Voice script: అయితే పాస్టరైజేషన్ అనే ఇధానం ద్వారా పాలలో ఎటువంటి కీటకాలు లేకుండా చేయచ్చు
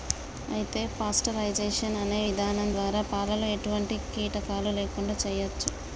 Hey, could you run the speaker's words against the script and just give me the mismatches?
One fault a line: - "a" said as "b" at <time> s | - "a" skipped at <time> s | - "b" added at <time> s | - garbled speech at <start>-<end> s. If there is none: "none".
none